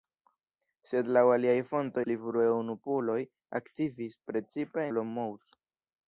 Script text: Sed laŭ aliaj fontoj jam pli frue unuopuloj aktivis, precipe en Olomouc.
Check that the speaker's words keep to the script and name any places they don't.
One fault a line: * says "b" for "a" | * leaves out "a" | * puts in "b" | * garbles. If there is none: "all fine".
* leaves out "jam"
* leaves out "en"